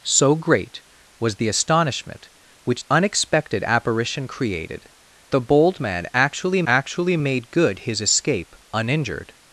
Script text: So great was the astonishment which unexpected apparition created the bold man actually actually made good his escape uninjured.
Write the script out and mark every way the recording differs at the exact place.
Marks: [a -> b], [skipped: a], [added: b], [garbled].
So great was the astonishment which unexpected apparition created the bold man actually actually made good his escape uninjured.